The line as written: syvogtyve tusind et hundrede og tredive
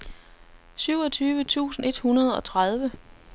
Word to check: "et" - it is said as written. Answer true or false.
true